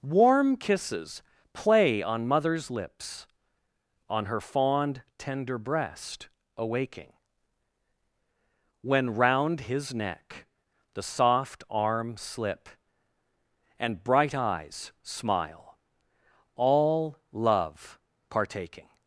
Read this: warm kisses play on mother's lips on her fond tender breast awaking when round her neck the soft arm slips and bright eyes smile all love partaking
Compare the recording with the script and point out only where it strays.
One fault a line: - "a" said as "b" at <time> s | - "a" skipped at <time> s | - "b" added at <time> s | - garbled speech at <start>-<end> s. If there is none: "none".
- "her" said as "his" at 9.6 s
- "slips" said as "slip" at 12.2 s